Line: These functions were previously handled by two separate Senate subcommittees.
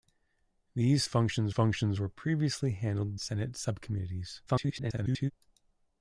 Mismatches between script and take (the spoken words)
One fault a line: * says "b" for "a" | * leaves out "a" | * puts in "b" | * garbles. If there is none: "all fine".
* puts in "functions"
* leaves out "by two separate"
* garbles